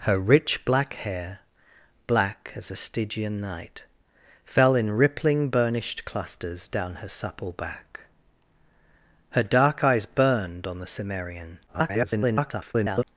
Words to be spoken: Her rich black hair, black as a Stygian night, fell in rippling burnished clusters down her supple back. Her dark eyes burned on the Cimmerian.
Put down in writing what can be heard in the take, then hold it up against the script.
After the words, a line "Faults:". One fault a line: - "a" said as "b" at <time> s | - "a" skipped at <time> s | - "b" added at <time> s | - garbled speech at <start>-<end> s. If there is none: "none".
Her rich black hair, black as a Stygian night, fell in rippling burnished clusters down her supple back. Her dark eyes burned on the Cimmerian. [garbled]
Faults:
- garbled speech at 11.7-13.0 s